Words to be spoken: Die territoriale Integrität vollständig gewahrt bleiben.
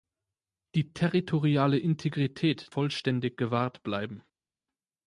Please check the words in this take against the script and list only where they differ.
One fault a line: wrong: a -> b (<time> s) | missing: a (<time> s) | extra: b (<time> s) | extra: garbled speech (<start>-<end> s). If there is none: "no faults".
no faults